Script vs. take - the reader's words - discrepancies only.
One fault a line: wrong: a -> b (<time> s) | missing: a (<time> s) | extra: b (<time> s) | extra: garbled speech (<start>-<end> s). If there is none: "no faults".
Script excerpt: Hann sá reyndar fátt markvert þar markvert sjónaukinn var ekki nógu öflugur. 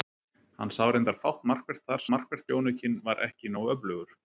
no faults